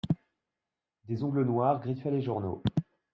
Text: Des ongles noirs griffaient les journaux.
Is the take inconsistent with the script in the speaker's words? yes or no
no